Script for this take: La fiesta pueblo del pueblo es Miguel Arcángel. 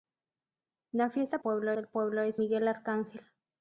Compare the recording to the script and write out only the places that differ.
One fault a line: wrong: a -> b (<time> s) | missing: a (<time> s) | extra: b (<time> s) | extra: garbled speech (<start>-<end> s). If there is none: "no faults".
no faults